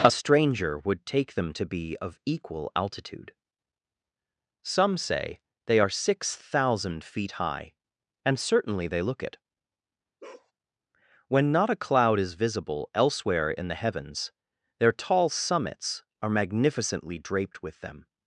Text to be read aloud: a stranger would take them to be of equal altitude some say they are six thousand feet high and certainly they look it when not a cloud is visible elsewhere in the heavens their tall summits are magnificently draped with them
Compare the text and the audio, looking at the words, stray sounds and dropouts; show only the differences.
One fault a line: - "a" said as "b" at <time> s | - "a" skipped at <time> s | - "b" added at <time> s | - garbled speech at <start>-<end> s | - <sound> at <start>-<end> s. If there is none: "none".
- bark at 10.2-10.5 s